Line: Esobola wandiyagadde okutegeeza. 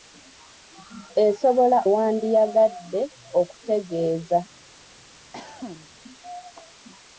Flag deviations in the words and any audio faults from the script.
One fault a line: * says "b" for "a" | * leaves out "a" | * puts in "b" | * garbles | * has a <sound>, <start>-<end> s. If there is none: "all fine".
* has a cough, 5.3-5.9 s